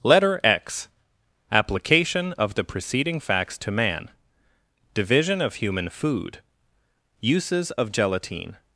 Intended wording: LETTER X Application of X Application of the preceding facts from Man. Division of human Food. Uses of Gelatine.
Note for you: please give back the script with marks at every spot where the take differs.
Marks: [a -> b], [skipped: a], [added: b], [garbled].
LETTER X Application of [skipped: X Application of] the preceding facts [from -> to] Man. Division of human Food. Uses of Gelatine.